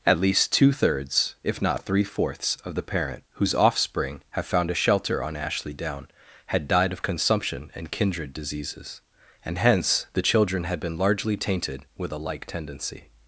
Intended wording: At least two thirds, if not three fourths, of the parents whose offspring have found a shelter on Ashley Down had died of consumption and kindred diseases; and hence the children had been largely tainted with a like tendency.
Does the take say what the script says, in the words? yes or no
no